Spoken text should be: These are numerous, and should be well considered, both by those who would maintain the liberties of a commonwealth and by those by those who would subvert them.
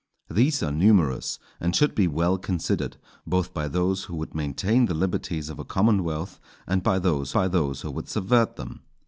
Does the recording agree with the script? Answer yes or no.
yes